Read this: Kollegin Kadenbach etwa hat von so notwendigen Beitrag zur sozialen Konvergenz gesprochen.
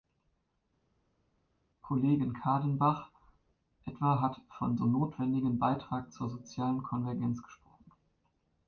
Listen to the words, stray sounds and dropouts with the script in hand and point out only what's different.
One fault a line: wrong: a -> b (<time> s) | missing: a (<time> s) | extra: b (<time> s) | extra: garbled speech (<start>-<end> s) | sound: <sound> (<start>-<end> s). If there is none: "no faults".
no faults